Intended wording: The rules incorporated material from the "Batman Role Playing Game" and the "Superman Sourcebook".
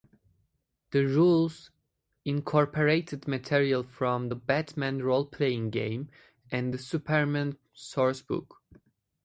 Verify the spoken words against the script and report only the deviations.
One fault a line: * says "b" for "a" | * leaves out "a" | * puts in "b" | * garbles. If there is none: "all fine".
all fine